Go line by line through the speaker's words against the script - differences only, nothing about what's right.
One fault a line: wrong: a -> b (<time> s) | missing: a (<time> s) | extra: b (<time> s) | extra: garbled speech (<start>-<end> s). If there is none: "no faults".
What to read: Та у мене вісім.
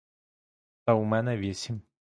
no faults